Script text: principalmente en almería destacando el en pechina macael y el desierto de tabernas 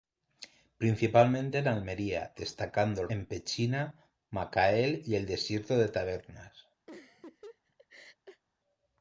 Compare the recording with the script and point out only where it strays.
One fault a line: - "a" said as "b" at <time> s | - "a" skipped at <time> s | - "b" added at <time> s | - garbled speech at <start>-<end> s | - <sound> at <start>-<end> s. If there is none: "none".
- laugh at 6.9-8.4 s